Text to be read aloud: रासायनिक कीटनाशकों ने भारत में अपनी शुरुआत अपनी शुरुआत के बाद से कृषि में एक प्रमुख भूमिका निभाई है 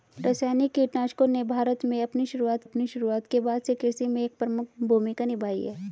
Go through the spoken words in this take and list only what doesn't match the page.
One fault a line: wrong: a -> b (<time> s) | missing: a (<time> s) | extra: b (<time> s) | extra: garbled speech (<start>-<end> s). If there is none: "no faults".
no faults